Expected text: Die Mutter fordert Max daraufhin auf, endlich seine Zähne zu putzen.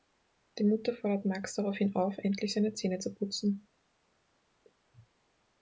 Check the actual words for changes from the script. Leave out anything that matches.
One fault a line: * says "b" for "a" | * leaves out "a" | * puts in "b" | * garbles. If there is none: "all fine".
all fine